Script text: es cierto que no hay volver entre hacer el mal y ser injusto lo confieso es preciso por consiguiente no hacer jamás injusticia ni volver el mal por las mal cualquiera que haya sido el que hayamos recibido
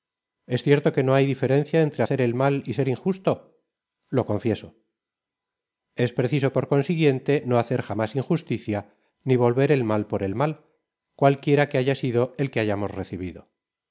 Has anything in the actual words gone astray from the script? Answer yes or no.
yes